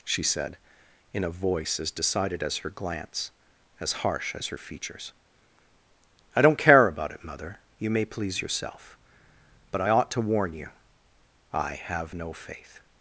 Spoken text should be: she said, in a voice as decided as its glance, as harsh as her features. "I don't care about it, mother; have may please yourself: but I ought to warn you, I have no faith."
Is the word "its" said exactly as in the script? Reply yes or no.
no